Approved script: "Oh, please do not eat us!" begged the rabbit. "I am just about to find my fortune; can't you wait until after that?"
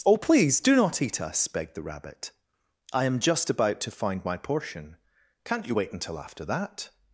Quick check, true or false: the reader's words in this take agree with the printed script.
false